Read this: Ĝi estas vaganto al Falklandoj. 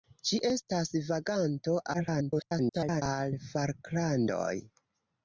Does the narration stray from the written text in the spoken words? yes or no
yes